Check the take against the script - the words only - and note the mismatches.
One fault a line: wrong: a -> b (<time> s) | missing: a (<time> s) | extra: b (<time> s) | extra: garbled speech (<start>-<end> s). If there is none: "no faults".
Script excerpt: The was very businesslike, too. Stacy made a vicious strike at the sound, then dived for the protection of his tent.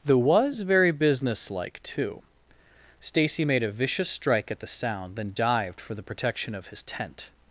no faults